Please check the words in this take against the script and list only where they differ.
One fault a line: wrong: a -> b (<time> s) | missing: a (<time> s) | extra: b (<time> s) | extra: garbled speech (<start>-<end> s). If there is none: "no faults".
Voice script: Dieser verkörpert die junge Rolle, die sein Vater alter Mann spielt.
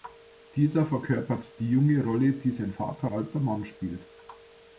no faults